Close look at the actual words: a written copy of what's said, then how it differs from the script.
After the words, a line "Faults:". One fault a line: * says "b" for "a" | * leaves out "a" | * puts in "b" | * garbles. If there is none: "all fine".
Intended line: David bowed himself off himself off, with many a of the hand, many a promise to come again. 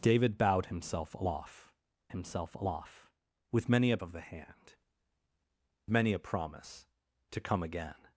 David bowed himself off himself off, with many a of the hand, many a promise to come again.
Faults:
all fine